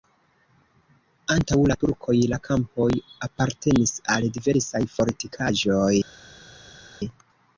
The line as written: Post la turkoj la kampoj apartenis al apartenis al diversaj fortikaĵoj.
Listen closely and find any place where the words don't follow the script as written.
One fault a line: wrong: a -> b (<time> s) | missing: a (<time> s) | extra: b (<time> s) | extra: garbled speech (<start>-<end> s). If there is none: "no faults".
wrong: Post -> Antaŭ (1.3 s)
missing: apartenis al (4.3 s)